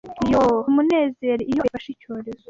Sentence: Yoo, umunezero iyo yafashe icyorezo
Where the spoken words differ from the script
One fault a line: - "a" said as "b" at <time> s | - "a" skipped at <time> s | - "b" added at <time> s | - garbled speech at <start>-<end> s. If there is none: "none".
none